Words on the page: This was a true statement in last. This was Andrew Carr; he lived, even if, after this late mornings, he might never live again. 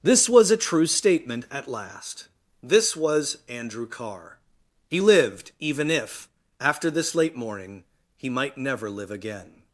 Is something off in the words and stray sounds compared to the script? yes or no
yes